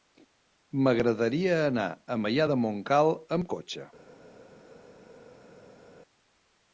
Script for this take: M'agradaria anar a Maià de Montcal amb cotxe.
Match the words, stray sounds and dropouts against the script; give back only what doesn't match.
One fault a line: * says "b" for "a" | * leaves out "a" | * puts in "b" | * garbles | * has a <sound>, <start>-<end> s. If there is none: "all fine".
all fine